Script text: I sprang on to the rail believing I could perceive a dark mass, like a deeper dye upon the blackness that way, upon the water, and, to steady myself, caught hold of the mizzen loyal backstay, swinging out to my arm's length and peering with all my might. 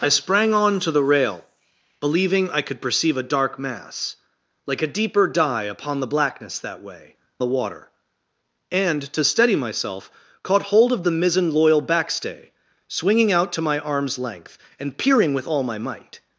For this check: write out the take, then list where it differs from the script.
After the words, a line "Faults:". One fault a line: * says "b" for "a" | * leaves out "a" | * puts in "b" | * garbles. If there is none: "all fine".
I sprang on to the rail believing I could perceive a dark mass, like a deeper dye upon the blackness that way, the water, and, to steady myself, caught hold of the mizzen loyal backstay, swinging out to my arm's length and peering with all my might.
Faults:
* leaves out "upon"